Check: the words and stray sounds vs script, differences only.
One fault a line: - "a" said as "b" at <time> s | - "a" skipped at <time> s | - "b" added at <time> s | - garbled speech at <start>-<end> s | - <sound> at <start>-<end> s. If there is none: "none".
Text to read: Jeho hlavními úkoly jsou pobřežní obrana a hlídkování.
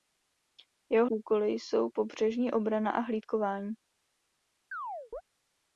- "hlavními" skipped at 1.1 s
- chirp at 4.7-5.2 s